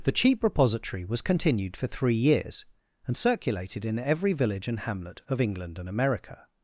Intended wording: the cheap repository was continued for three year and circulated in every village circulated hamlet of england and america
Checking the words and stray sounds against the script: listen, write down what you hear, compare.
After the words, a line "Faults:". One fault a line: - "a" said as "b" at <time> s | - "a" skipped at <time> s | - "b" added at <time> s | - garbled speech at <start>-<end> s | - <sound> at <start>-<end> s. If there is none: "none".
the cheap repository was continued for three years and circulated in every village and hamlet of england and america
Faults:
- "year" said as "years" at 2.1 s
- "circulated" said as "and" at 4.7 s